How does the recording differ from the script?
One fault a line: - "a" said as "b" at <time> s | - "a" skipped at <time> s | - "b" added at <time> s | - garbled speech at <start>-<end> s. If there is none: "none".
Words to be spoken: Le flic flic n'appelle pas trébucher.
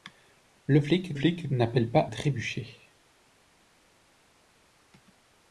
none